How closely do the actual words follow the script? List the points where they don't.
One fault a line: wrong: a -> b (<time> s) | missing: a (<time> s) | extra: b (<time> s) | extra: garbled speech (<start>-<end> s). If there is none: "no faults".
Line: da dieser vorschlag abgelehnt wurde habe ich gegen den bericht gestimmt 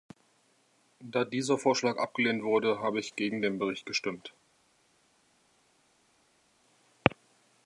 no faults